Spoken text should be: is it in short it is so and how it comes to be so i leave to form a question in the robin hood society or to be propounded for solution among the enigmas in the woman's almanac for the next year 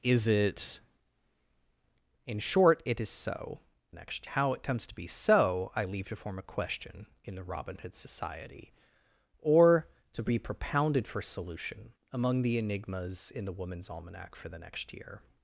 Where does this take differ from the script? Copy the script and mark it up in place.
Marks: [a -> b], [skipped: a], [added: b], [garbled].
is it in short it is so [and -> next] how it comes to be so i leave to form a question in the robin hood society or to be propounded for solution among the enigmas in the woman's almanac for the next year